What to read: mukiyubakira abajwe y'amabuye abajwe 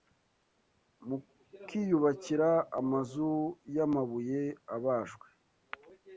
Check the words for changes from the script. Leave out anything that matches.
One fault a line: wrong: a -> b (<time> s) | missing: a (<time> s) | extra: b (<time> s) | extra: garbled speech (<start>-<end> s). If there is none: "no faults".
wrong: abajwe -> amazu (2.8 s)